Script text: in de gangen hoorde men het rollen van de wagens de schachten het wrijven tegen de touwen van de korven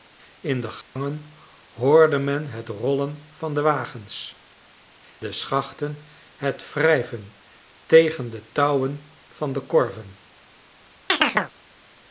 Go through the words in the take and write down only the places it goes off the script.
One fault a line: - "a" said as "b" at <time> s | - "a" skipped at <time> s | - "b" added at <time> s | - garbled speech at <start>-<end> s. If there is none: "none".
none